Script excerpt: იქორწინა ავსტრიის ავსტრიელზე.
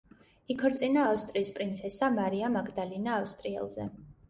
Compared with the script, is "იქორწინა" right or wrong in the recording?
right